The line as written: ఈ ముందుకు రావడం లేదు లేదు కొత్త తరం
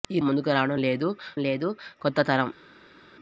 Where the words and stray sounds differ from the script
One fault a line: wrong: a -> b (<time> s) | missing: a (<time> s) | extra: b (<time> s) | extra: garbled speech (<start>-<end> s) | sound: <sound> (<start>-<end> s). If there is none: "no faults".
no faults